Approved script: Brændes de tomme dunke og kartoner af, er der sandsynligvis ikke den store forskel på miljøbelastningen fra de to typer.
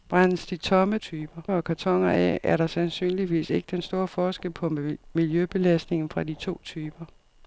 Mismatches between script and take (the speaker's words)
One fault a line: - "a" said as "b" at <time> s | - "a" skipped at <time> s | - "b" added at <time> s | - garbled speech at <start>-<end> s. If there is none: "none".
- "dunke" said as "typer" at 1.0 s